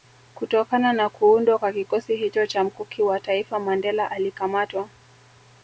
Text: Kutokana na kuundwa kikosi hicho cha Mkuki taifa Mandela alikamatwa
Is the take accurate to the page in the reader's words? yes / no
no